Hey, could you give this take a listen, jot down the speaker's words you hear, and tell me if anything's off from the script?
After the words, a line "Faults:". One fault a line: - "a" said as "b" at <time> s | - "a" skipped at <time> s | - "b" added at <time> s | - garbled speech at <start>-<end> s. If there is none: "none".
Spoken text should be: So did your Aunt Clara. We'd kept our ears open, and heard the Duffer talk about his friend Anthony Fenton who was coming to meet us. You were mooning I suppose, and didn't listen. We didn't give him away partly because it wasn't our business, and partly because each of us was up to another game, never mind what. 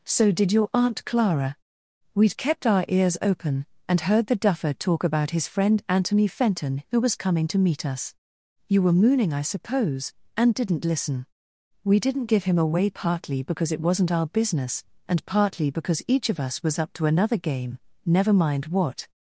So did your Aunt Clara. We'd kept our ears open, and heard the Duffer talk about his friend Anthony Fenton who was coming to meet us. You were mooning I suppose, and didn't listen. We didn't give him away partly because it wasn't our business, and partly because each of us was up to another game, never mind what.
Faults:
none